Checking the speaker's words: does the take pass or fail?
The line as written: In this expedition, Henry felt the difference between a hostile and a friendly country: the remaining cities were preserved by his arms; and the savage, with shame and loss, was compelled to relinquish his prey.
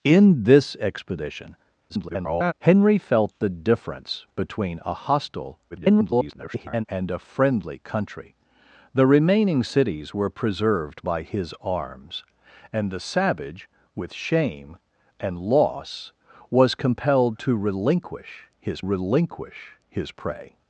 fail